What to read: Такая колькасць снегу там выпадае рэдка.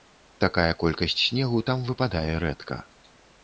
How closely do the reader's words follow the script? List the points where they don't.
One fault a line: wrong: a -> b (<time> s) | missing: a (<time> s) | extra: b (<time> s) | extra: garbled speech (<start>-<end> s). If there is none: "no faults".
no faults